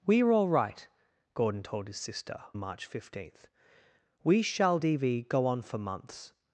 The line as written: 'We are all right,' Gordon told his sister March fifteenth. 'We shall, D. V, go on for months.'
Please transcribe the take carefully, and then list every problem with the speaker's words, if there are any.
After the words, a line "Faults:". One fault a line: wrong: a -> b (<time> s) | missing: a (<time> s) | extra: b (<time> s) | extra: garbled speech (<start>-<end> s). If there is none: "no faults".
'We are all right,' Gordon told his sister March fifteenth. 'We shall, D. V, go on for months.'
Faults:
no faults